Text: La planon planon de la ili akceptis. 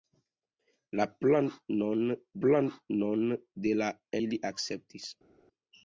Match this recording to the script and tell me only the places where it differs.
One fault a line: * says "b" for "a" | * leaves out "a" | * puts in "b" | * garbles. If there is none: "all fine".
all fine